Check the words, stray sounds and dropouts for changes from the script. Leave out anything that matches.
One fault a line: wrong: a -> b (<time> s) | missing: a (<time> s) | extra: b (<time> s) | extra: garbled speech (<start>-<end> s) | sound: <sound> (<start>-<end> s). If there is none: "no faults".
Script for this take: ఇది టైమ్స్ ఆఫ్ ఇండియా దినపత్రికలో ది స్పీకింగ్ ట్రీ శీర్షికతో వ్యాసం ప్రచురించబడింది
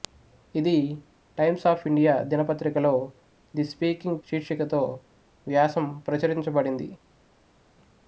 missing: ట్రీ (4.2 s)